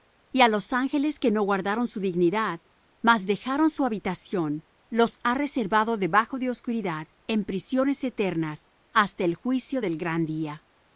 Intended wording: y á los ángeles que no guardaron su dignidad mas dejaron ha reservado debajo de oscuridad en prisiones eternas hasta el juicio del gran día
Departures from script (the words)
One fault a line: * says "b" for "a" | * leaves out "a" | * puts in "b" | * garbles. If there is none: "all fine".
* puts in "su habitación los"